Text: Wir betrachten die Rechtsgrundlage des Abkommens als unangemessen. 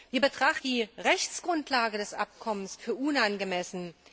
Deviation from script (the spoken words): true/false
false